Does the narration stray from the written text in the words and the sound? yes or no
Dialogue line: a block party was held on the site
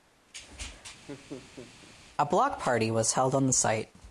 yes